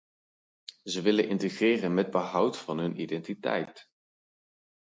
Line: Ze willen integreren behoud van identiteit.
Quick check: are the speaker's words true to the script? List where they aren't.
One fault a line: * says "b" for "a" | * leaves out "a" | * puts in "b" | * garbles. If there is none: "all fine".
* puts in "met"
* puts in "hun"